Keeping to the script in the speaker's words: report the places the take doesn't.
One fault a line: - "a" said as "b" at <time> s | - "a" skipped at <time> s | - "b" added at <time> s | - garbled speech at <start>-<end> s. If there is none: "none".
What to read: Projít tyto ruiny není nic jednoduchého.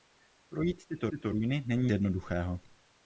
- "tyto" added at 1.1 s
- "nic" skipped at 1.9 s